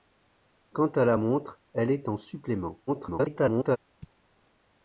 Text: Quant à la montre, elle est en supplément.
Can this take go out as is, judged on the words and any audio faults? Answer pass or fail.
fail